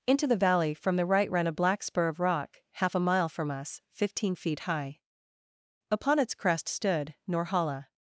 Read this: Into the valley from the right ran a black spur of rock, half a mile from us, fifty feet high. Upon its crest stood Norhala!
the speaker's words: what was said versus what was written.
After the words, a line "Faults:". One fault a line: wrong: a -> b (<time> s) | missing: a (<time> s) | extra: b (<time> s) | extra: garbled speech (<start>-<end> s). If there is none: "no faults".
Into the valley from the right ran a black spur of rock, half a mile from us, fifteen feet high. Upon its crest stood Norhala!
Faults:
wrong: fifty -> fifteen (3.9 s)